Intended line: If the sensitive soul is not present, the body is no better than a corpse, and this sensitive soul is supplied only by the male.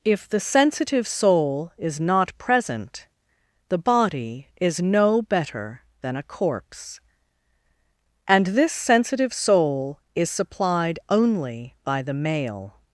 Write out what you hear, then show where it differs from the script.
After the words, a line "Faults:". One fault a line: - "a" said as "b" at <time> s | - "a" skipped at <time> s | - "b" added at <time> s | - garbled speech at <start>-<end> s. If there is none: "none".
If the sensitive soul is not present, the body is no better than a corpse, and this sensitive soul is supplied only by the male.
Faults:
none